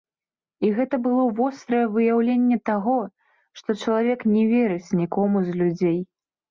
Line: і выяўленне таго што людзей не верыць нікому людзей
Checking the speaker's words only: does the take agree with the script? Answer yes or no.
no